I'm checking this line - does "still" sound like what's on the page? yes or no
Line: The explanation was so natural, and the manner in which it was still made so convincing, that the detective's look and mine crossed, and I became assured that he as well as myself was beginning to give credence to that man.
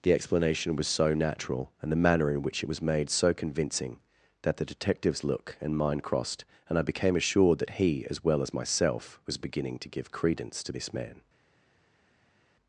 no